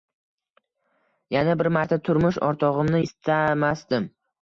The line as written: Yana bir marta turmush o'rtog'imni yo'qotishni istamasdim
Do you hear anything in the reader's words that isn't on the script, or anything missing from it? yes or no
yes